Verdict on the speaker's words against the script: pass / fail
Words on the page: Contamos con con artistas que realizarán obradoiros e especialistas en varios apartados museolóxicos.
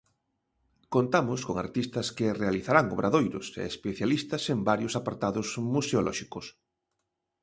fail